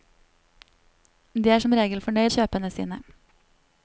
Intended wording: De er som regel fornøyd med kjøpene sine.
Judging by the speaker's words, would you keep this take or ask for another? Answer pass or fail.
fail